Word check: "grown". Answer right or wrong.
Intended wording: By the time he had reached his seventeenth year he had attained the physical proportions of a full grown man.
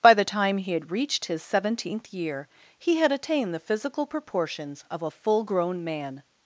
right